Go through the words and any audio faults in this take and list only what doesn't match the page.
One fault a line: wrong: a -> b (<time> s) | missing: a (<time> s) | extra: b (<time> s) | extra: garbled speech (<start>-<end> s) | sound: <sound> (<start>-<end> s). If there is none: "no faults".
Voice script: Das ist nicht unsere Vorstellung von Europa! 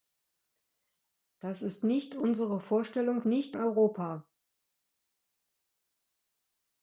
wrong: von -> nicht (3.2 s)